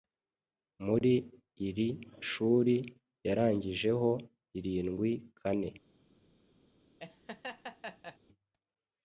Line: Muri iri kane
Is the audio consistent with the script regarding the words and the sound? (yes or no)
no